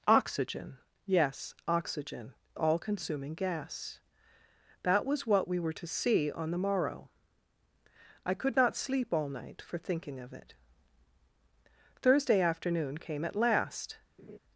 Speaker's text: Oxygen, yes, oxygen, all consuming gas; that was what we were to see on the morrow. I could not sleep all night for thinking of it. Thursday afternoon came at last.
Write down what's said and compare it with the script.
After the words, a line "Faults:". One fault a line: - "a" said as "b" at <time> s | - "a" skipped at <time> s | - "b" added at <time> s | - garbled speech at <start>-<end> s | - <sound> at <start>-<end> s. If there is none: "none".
Oxygen, yes, oxygen, all consuming gas; that was what we were to see on the morrow. I could not sleep all night for thinking of it. Thursday afternoon came at last.
Faults:
- laugh at 14.2-14.4 s